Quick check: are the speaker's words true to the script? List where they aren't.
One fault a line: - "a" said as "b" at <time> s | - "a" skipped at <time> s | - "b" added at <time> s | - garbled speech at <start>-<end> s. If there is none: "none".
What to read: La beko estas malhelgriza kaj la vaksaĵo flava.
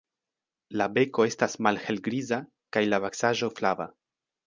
none